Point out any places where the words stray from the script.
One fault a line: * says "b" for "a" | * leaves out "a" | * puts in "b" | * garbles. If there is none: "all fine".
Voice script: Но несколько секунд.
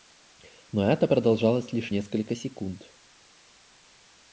* puts in "это продолжалось лишь"